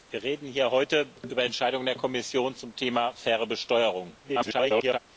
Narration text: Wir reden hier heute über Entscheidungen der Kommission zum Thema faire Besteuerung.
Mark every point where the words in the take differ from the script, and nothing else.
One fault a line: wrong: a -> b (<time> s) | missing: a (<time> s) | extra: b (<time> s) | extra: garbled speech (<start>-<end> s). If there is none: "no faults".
extra: garbled speech (4.2-5.0 s)